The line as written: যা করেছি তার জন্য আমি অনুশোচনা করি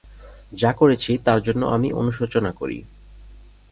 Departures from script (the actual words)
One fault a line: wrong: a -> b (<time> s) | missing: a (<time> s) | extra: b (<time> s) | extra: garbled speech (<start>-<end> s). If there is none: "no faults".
no faults